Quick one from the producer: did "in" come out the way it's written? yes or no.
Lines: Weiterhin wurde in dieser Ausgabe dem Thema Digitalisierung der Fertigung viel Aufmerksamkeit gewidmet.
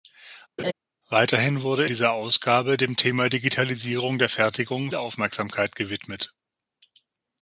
no